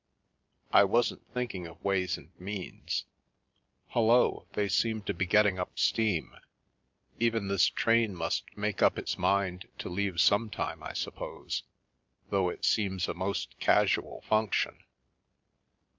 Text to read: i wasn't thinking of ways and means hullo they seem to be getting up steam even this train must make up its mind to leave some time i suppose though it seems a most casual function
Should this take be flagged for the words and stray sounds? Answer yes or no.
no